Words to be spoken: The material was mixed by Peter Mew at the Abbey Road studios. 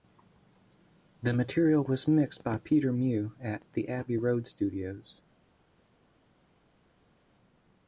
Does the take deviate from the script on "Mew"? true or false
false